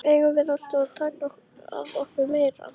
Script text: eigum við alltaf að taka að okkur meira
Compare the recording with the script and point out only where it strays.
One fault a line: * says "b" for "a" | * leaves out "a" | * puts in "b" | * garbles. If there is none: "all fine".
all fine